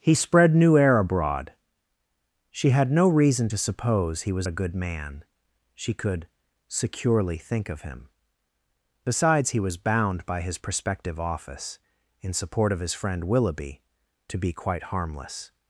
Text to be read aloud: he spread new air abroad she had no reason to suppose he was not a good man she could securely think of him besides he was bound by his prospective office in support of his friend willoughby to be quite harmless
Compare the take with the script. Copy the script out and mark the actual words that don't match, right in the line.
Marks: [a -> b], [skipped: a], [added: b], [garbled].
he spread new air abroad she had no reason to suppose he was [skipped: not] a good man she could securely think of him besides he was bound by his prospective office in support of his friend willoughby to be quite harmless